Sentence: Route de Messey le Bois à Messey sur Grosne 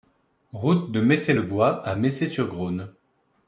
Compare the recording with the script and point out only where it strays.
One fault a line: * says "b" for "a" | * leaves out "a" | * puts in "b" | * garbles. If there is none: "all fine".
all fine